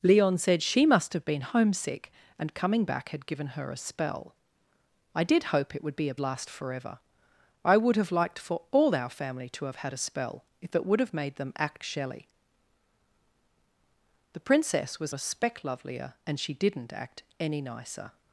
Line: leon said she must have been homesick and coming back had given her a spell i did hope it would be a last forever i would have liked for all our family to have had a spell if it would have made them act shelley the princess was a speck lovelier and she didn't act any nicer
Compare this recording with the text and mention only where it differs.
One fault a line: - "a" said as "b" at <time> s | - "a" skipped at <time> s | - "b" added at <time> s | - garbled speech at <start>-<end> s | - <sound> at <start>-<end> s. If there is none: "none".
none